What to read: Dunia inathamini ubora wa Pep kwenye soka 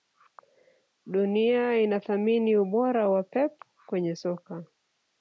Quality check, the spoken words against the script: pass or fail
pass